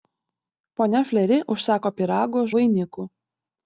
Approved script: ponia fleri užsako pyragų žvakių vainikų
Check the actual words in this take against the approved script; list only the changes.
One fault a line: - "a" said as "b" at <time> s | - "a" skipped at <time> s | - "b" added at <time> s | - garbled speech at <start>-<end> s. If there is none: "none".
- "žvakių" skipped at 2.4 s